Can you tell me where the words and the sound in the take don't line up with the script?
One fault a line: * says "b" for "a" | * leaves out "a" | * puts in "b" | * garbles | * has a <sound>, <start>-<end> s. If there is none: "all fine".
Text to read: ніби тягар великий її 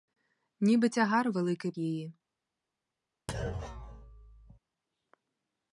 * has a thud, 3.3-4.6 s